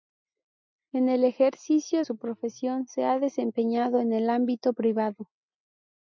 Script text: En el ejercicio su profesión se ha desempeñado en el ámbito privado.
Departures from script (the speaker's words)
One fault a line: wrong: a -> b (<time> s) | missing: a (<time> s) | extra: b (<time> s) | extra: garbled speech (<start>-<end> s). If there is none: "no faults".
no faults